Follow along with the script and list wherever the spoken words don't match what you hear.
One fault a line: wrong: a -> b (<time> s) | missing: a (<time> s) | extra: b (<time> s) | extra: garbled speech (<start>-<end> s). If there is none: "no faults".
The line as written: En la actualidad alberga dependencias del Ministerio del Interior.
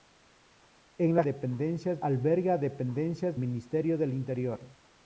wrong: actualidad -> dependencias (1.2 s)
missing: del (3.4 s)